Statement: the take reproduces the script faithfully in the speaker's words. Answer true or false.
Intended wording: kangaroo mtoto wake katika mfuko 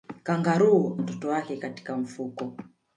true